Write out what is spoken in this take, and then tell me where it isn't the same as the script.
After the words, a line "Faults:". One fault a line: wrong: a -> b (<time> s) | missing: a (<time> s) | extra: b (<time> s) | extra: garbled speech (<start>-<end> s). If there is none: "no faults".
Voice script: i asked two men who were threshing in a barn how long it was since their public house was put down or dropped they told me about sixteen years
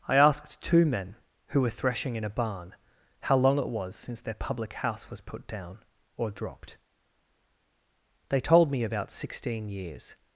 i asked two men who were threshing in a barn how long it was since their public house was put down or dropped they told me about sixteen years
Faults:
no faults